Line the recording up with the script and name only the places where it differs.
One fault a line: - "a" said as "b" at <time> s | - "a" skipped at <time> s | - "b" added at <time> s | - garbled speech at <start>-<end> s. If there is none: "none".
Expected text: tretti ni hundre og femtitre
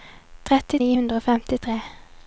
none